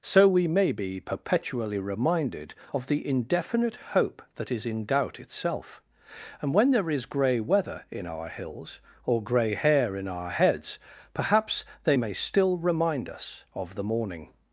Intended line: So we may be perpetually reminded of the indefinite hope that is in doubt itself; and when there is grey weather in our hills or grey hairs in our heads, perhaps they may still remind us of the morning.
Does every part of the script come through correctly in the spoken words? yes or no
no